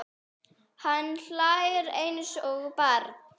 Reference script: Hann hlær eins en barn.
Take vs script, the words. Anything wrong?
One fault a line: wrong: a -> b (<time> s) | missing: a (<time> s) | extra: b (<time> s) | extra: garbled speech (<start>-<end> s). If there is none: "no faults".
wrong: en -> og (2.5 s)